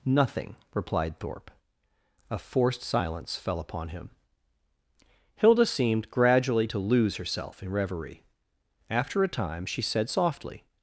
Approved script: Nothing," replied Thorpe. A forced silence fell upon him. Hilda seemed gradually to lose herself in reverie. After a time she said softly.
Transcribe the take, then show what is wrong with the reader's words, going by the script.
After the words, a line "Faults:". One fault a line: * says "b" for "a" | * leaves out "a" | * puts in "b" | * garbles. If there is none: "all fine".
Nothing," replied Thorpe. A forced silence fell upon him. Hilda seemed gradually to lose herself in reverie. After a time she said softly.
Faults:
all fine